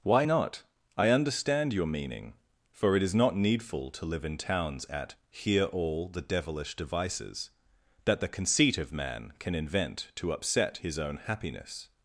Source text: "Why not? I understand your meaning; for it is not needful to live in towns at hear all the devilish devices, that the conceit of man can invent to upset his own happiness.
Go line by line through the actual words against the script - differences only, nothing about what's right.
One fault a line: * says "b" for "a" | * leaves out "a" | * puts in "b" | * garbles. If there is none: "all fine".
all fine